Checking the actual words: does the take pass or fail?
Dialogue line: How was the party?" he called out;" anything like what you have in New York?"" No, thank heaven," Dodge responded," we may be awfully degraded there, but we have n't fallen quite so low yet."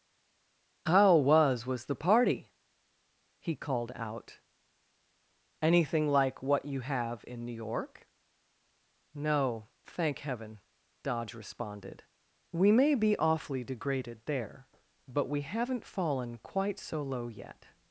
fail